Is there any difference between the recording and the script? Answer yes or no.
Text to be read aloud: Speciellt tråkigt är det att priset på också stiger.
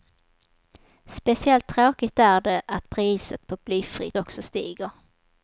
yes